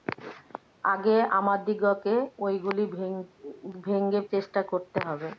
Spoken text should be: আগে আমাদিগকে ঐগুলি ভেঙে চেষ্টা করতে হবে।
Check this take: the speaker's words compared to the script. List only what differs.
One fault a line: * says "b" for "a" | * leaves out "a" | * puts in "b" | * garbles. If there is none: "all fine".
all fine